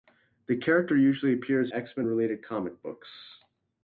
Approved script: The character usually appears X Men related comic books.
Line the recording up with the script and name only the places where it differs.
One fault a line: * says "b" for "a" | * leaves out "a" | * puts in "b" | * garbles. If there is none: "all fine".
all fine